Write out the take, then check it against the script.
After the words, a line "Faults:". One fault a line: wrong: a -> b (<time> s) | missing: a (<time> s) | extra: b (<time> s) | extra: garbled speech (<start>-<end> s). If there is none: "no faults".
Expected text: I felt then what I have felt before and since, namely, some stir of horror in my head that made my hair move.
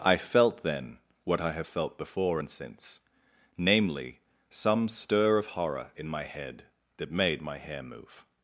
I felt then what I have felt before and since, namely, some stir of horror in my head that made my hair move.
Faults:
no faults